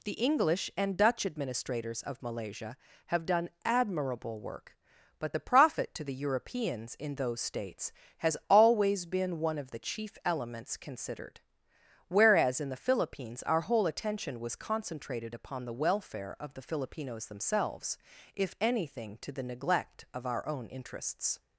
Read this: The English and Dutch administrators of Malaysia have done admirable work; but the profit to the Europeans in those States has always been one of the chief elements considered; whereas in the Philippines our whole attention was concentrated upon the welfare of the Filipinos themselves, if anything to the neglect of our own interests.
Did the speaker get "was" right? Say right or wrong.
right